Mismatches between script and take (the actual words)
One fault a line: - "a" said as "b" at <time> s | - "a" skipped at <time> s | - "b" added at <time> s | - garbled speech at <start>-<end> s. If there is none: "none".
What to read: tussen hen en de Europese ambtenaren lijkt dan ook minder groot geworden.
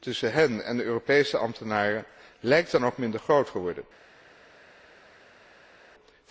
none